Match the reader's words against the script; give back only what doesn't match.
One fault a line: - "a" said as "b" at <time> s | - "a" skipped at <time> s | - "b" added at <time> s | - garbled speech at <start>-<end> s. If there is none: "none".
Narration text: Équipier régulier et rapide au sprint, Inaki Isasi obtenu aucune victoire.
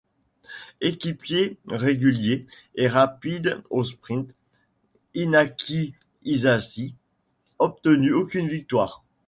none